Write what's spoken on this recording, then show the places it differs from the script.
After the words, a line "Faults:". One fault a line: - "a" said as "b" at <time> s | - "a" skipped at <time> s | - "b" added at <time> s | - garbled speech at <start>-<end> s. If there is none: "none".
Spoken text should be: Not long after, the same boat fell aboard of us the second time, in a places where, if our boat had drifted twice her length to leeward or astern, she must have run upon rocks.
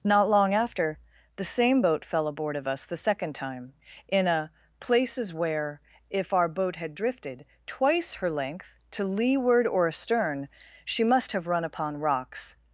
Not long after, the same boat fell aboard of us the second time, in a places where, if our boat had drifted twice her length to leeward or astern, she must have run upon rocks.
Faults:
none